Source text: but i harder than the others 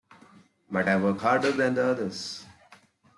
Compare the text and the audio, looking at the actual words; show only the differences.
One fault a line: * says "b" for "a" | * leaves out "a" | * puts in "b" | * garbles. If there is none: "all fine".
* puts in "work"